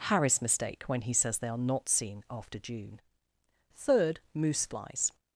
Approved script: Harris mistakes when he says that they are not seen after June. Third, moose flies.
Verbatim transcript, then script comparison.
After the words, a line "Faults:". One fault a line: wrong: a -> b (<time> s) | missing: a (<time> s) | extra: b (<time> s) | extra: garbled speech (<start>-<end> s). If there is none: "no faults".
Harris mistake when he says they are not seen after June. Third, moose flies.
Faults:
wrong: mistakes -> mistake (0.4 s)
missing: that (1.4 s)